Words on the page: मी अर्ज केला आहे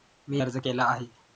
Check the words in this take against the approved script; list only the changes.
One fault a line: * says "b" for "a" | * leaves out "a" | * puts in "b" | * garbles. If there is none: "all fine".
all fine